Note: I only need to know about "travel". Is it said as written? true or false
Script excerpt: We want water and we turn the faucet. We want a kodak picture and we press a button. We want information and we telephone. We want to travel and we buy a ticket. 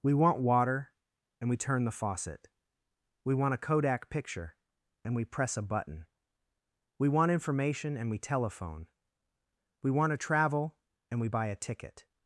true